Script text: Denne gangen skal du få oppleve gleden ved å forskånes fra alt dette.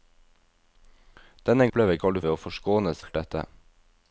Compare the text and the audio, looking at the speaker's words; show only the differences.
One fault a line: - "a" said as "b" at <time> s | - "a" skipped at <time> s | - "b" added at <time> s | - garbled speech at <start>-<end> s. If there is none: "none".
- "gangen" said as "oppleve" at 1.7 s
- "få oppleve gleden" skipped at 2.2 s
- "fra" skipped at 3.0 s